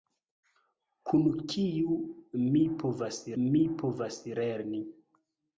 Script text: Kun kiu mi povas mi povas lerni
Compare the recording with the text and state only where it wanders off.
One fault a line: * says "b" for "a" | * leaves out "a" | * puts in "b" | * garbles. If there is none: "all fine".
all fine